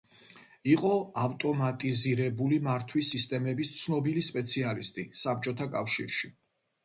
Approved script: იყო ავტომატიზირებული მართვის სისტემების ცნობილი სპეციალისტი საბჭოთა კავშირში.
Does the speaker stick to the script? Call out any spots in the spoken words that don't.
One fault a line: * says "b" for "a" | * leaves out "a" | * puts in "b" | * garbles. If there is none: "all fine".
all fine